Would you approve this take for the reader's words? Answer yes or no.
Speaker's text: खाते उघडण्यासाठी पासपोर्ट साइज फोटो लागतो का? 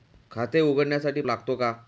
no